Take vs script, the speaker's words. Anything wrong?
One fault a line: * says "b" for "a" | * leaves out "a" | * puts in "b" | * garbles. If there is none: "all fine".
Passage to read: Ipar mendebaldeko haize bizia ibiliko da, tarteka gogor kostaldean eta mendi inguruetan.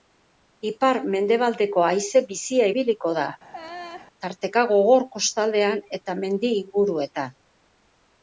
all fine